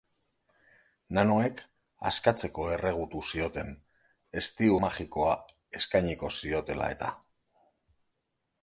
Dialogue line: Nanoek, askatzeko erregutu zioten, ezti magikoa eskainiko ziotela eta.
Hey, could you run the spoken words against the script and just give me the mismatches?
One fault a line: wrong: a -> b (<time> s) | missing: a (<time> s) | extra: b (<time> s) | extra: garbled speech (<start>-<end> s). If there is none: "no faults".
no faults